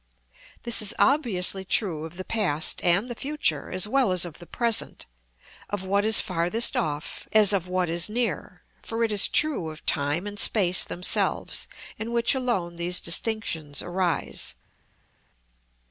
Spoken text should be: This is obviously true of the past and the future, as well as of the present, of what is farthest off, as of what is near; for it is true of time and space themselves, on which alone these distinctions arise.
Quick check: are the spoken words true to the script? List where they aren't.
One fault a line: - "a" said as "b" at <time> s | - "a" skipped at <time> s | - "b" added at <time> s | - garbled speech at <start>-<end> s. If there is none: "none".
- "on" said as "in" at 12.0 s